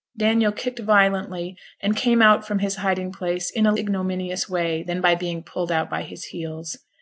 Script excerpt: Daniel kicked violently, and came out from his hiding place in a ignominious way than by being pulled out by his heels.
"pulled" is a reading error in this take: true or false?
false